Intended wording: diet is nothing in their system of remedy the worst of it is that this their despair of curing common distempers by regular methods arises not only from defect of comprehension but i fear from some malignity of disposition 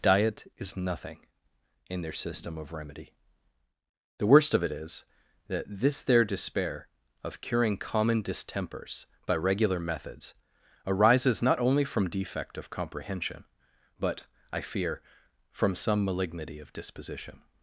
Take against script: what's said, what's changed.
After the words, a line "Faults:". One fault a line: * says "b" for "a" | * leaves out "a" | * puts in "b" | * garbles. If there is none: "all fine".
diet is nothing in their system of remedy the worst of it is that this their despair of curing common distempers by regular methods arises not only from defect of comprehension but i fear from some malignity of disposition
Faults:
all fine